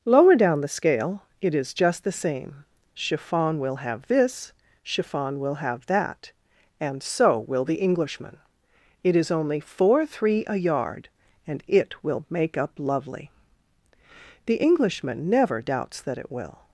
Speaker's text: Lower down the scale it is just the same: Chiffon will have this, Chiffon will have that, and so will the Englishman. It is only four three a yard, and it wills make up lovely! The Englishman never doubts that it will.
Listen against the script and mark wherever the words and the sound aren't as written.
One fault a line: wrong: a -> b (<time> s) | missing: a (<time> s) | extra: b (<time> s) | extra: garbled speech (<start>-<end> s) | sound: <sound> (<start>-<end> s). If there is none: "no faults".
wrong: wills -> will (12.0 s)